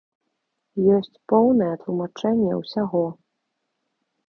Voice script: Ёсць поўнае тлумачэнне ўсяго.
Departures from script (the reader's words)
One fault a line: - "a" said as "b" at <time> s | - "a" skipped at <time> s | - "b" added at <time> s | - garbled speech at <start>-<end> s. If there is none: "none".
none